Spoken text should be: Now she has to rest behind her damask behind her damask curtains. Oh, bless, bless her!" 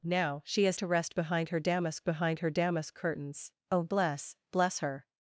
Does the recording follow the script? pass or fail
pass